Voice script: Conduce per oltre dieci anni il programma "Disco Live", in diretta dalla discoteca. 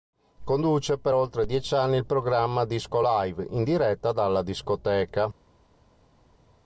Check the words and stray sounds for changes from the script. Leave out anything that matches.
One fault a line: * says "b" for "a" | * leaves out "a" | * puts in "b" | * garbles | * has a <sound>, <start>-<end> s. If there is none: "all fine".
all fine